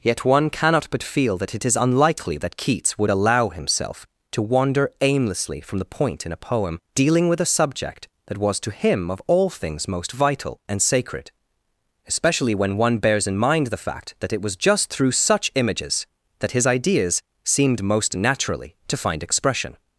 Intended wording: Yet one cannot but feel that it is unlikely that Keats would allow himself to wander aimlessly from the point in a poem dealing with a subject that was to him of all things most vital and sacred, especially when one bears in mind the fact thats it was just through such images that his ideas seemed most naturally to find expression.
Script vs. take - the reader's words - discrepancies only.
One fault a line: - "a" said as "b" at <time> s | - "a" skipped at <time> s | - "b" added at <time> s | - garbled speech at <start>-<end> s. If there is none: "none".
- "thats" said as "that" at 14.2 s